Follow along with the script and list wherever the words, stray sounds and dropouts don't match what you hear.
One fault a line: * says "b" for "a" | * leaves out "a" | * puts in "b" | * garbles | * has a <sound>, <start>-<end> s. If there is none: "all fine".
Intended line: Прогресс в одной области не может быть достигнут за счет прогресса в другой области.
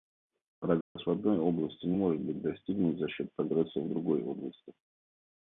* has a dropout, 0.8-1.0 s